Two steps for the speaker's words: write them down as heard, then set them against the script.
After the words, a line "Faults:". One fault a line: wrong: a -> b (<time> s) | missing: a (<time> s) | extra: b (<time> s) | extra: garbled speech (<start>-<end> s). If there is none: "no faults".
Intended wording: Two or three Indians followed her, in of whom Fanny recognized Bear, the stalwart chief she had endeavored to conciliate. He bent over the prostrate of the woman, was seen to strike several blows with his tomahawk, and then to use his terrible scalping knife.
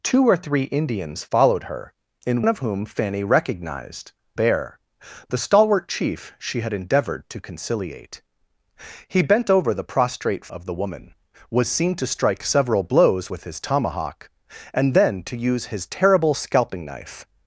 Two or three Indians followed her, in of whom Fanny recognized Bear, the stalwart chief she had endeavored to conciliate. He bent over the prostrate of the woman, was seen to strike several blows with his tomahawk, and then to use his terrible scalping knife.
Faults:
no faults